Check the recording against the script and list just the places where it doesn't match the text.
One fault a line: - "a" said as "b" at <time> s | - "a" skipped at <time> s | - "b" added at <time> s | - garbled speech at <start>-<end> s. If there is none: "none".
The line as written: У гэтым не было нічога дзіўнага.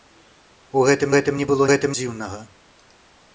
- "гэтым" added at 1.1 s
- "нічога" said as "гэтым" at 1.7 s